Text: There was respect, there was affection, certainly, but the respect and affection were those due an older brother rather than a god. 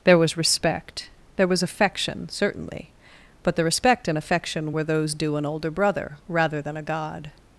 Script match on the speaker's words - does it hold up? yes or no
yes